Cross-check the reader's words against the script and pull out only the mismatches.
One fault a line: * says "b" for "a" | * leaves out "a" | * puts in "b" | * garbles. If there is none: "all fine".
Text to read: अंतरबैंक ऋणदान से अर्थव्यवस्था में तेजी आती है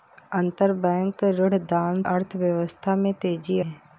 * leaves out "से"
* leaves out "आती"